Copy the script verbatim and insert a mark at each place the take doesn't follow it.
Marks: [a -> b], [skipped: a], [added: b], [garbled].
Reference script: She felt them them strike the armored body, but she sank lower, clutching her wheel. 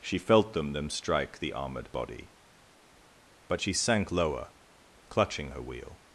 She felt them them strike the armored body, but she sank lower, clutching her wheel.